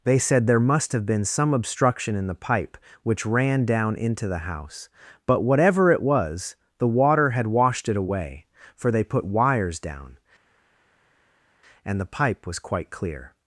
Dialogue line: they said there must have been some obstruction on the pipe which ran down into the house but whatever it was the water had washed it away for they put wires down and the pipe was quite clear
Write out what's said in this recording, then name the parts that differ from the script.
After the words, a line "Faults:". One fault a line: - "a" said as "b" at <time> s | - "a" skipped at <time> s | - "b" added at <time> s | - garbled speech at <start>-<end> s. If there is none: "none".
they said there must have been some obstruction in the pipe which ran down into the house but whatever it was the water had washed it away for they put wires down and the pipe was quite clear
Faults:
- "on" said as "in" at 2.1 s